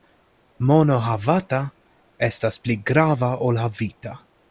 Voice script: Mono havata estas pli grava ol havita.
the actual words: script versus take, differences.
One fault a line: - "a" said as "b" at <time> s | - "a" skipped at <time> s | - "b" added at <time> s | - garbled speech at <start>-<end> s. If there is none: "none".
none